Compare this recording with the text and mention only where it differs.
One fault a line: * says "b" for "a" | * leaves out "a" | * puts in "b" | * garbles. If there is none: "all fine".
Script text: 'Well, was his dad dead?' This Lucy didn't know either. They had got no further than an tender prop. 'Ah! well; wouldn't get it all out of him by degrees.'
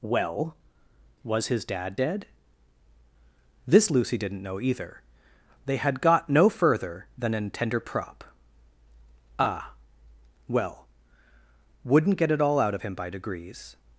all fine